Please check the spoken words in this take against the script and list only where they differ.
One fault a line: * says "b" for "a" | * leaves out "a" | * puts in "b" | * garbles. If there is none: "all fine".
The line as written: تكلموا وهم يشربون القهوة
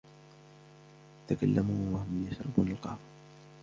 all fine